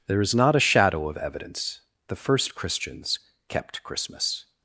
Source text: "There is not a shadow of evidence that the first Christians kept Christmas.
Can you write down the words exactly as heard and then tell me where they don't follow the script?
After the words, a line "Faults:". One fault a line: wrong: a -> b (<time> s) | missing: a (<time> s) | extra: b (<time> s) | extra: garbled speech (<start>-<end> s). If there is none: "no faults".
"There is not a shadow of evidence the first Christians kept Christmas.
Faults:
missing: that (1.8 s)